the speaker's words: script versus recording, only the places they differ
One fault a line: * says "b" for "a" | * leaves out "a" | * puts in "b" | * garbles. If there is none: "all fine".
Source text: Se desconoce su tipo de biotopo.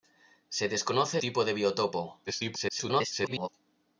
* leaves out "su"
* garbles